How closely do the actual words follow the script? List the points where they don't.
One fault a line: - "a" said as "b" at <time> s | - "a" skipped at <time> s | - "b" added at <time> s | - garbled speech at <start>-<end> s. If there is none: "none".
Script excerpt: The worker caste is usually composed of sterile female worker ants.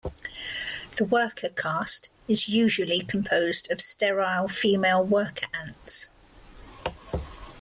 none